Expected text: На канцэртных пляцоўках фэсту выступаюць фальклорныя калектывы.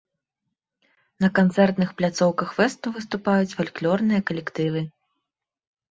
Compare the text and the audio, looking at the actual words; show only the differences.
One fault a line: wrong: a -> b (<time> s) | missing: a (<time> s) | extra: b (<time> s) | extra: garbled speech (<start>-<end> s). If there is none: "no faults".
no faults